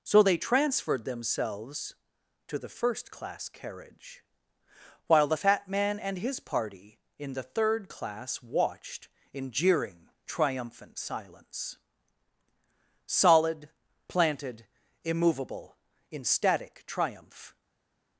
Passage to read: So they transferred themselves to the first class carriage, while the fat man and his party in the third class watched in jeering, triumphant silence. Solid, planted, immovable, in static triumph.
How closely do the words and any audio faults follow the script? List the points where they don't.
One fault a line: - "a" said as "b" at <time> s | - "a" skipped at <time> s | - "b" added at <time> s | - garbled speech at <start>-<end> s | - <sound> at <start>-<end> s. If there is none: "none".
none